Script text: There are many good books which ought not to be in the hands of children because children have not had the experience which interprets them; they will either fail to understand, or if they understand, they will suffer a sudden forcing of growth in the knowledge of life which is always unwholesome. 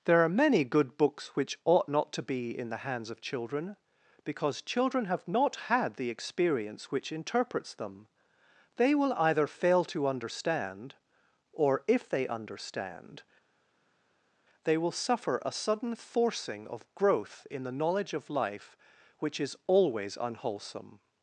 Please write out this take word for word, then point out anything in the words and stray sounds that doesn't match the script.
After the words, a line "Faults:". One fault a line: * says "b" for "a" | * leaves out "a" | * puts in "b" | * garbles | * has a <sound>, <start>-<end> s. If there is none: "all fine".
There are many good books which ought not to be in the hands of children because children have not had the experience which interprets them; they will either fail to understand, or if they understand, they will suffer a sudden forcing of growth in the knowledge of life which is always unwholesome.
Faults:
all fine